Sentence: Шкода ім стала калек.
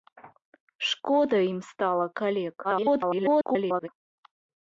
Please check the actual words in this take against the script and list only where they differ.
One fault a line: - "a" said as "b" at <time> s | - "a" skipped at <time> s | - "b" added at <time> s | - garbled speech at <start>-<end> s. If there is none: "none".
- garbled speech at 2.6-3.9 s